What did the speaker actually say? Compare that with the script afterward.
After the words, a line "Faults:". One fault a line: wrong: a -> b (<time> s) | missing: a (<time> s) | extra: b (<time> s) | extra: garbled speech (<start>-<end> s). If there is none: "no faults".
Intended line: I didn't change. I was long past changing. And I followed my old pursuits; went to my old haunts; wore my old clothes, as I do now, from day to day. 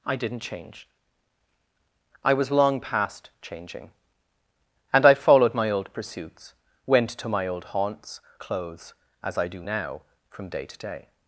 I didn't change. I was long past changing. And I followed my old pursuits; went to my old haunts; clothes, as I do now, from day to day.
Faults:
missing: wore my old (8.2 s)